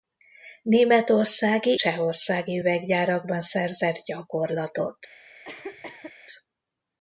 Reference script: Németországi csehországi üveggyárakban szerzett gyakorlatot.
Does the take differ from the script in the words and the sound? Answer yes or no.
yes